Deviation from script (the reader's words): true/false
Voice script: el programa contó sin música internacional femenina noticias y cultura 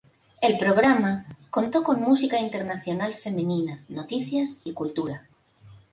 true